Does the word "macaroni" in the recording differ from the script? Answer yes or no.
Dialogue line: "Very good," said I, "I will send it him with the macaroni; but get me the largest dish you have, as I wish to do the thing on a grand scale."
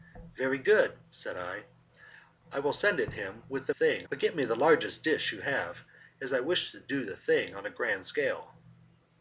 yes